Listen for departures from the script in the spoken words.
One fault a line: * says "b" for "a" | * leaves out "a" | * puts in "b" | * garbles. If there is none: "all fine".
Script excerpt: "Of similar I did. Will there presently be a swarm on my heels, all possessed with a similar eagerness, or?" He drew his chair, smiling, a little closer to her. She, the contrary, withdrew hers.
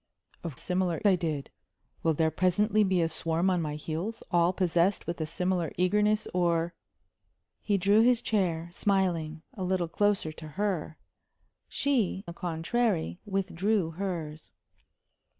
all fine